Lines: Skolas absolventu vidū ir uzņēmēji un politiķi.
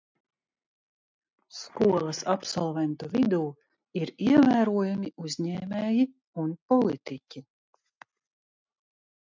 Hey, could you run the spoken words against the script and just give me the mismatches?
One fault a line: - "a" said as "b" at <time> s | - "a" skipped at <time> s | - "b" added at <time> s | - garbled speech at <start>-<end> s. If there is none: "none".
- "ievērojami" added at 4.3 s